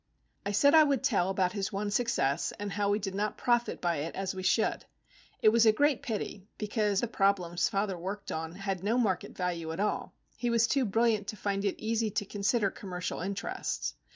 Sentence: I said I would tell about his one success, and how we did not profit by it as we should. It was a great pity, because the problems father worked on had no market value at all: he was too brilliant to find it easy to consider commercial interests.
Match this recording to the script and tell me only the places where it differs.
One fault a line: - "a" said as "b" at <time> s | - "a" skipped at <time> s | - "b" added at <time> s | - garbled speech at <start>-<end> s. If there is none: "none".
none